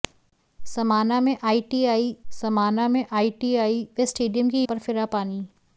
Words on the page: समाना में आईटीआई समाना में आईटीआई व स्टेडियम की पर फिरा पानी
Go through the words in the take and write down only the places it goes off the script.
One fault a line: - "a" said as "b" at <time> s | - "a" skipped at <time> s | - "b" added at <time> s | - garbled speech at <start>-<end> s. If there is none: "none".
none